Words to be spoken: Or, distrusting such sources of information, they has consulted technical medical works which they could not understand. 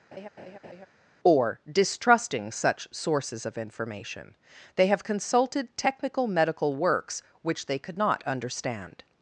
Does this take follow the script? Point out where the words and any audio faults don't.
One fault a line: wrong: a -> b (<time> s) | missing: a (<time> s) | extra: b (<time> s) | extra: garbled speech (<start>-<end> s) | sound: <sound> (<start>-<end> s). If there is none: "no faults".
sound: laugh (0.1-0.9 s)
wrong: has -> have (4.9 s)